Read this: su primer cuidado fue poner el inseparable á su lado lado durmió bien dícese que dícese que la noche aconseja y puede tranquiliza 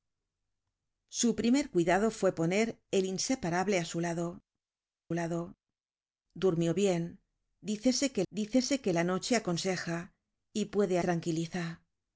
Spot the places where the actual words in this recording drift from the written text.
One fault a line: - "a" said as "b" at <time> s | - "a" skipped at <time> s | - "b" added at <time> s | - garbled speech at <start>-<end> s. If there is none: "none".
none